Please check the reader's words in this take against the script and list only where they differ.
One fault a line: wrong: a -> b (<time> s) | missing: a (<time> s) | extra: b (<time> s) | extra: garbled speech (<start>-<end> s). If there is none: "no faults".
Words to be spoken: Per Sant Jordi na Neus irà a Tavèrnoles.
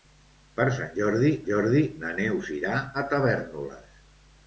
extra: Jordi (1.5 s)